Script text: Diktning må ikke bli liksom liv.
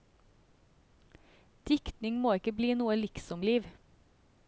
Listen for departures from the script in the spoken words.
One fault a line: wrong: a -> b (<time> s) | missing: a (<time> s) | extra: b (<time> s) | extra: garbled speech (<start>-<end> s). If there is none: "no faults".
extra: noe (2.8 s)